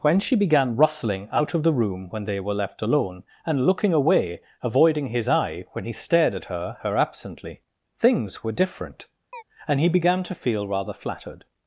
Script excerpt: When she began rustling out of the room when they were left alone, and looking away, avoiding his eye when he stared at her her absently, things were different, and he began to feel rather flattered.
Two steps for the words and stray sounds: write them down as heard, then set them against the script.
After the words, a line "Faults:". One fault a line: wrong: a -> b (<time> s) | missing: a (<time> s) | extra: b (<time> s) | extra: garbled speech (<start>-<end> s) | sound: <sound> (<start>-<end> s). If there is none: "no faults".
When she began rustling out of the room when they were left alone, and looking away, avoiding his eye when he stared at her her absently, things were different, and he began to feel rather flattered.
Faults:
sound: chirp (9.3-9.4 s)